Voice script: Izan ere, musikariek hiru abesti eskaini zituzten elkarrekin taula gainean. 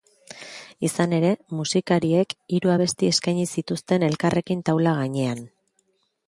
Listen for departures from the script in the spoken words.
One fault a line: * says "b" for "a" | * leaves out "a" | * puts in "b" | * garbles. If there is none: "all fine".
all fine